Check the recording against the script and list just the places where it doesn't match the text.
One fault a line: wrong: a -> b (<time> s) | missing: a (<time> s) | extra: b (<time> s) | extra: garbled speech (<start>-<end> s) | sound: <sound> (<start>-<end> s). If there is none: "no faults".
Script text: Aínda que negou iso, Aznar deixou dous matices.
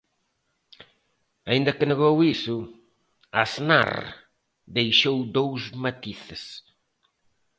no faults